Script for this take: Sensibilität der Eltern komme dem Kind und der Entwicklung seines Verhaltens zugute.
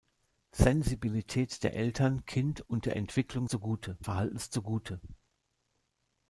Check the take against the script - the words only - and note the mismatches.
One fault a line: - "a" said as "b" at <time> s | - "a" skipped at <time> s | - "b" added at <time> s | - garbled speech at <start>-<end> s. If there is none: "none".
- "komme dem" skipped at 2.2 s
- "seines" said as "zugute" at 3.5 s